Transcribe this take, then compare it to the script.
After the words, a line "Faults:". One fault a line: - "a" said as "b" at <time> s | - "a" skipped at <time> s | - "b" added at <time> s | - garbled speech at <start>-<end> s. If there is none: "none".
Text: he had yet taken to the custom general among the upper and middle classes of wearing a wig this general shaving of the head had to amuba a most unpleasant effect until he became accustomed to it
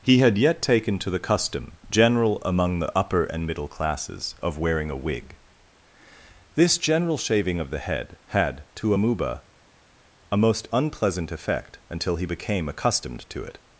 he had yet taken to the custom general among the upper and middle classes of wearing a wig this general shaving of the head had to amuba a most unpleasant effect until he became accustomed to it
Faults:
none